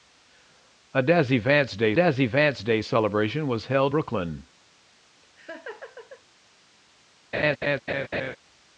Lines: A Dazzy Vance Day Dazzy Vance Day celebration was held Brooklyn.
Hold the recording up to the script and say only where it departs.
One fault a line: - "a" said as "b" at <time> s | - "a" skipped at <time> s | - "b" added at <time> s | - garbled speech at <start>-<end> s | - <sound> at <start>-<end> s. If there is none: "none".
- laugh at 5.2-6.2 s
- laugh at 7.3-8.4 s